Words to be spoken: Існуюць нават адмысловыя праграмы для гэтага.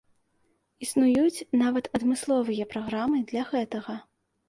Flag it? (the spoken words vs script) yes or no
no